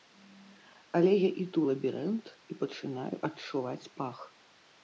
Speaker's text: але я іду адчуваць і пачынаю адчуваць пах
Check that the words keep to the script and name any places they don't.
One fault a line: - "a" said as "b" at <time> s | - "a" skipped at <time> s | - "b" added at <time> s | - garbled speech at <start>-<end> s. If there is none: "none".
- "адчуваць" said as "лабірынт" at 1.7 s